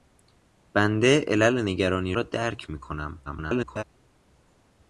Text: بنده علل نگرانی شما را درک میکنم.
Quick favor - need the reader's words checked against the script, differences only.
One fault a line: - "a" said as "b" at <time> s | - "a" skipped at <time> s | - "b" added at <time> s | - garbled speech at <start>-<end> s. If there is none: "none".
- "شما" skipped at 2.2 s
- garbled speech at 3.3-3.8 s